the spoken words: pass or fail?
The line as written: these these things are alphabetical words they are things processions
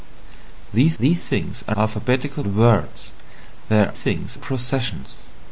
pass